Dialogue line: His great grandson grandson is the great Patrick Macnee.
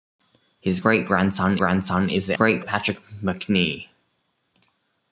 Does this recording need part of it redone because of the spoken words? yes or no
no